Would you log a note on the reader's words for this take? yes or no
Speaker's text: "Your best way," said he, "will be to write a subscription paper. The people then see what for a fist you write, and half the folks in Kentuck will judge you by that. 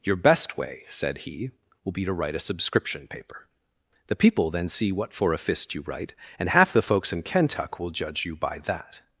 no